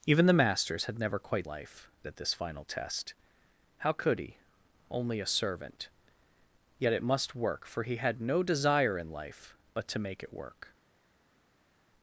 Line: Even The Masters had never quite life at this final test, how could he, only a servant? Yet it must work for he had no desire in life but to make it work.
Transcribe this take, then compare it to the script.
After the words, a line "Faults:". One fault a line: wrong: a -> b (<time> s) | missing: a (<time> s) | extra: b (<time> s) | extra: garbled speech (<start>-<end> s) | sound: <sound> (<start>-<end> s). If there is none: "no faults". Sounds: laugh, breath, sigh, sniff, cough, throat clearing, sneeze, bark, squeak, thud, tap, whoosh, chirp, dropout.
Even The Masters had never quite life at this final test, how could he, only a servant? Yet it must work for he had no desire in life but to make it work.
Faults:
no faults